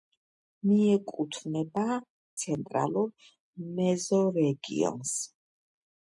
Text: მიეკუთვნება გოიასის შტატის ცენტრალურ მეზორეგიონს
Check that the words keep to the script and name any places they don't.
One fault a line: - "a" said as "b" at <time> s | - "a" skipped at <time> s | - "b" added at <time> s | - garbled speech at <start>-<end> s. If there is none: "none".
- "გოიასის შტატის" skipped at 1.8 s